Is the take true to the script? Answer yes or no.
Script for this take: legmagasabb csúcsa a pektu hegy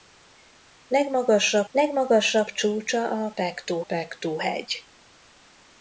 no